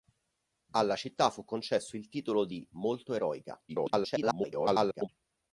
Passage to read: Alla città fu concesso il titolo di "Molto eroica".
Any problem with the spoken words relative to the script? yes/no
yes